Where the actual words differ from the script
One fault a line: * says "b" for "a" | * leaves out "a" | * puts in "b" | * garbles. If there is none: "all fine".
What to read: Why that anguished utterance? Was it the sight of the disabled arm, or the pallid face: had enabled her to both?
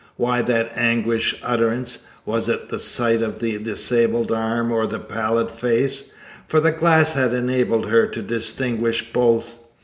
* puts in "for the glass"
* puts in "distinguish"